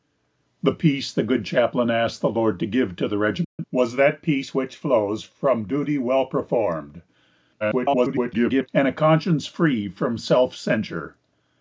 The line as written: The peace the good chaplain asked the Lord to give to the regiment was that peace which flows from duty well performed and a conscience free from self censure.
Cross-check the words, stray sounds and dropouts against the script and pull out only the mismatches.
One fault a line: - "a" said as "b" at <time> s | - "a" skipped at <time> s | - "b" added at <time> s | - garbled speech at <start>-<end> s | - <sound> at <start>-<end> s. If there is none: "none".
- dropout at 3.4-3.6 s
- garbled speech at 7.6-8.7 s